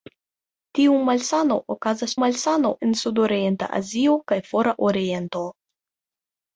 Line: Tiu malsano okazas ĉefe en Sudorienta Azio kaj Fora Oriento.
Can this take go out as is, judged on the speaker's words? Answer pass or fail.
fail